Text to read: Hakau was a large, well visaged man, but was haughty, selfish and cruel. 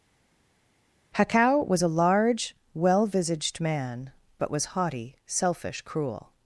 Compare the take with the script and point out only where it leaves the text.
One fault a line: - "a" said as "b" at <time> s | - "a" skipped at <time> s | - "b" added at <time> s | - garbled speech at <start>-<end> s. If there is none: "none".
- "and" skipped at 5.8 s